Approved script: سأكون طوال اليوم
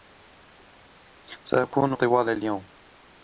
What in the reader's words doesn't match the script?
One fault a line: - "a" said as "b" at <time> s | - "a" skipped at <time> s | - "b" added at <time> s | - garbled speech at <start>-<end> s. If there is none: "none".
none